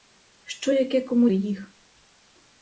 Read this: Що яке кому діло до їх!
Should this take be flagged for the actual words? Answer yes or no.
yes